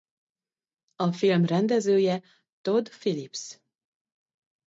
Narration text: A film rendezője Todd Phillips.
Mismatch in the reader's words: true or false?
false